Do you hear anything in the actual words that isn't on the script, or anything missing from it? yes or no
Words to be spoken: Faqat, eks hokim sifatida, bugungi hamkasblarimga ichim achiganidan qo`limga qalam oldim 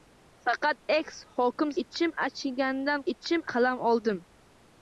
yes